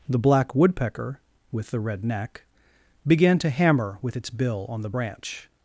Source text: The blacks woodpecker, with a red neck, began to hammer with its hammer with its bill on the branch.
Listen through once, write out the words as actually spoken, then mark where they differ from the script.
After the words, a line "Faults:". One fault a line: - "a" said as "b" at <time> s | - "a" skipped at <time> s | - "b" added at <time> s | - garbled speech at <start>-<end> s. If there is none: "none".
The black woodpecker, with the red neck, began to hammer with its bill on the branch.
Faults:
- "blacks" said as "black" at 0.2 s
- "a" said as "the" at 1.7 s
- "hammer with its" skipped at 4.3 s